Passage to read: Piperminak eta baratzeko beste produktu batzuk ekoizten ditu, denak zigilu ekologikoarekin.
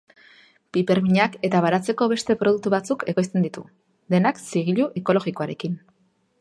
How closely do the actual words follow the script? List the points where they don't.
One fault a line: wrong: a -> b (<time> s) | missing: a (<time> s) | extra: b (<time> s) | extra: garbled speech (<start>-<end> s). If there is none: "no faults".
no faults